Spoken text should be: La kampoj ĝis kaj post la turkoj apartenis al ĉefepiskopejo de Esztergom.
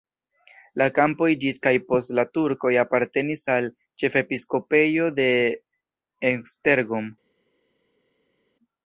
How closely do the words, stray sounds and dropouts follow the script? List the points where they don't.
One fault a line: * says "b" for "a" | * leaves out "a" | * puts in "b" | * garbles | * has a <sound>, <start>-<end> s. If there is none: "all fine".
all fine